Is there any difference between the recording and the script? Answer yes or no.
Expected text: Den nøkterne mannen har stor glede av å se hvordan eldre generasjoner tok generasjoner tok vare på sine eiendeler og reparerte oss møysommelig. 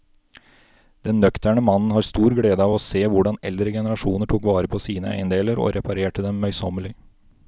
yes